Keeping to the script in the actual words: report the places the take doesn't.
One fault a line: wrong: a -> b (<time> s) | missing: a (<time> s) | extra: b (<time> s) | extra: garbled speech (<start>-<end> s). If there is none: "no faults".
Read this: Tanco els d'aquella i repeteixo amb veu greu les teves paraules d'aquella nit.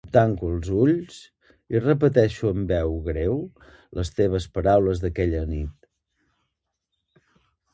wrong: d'aquella -> ulls (0.8 s)